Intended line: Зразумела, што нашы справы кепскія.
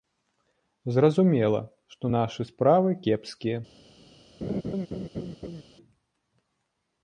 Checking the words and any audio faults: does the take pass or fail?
fail